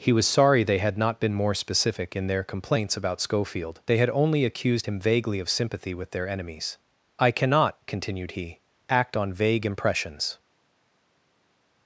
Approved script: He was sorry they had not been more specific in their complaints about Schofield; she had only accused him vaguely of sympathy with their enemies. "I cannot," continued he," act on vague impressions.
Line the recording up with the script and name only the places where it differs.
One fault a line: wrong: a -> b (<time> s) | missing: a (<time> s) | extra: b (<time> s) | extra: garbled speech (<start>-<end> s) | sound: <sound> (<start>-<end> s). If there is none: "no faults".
wrong: she -> they (3.9 s)